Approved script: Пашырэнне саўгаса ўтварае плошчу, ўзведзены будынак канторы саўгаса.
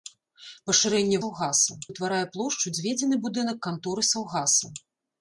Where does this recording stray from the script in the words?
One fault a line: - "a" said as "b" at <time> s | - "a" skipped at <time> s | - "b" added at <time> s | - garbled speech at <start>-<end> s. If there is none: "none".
none